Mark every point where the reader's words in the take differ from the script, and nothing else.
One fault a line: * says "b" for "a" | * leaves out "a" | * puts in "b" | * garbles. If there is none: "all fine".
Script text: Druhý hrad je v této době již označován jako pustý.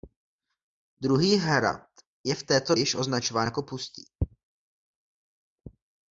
* leaves out "době"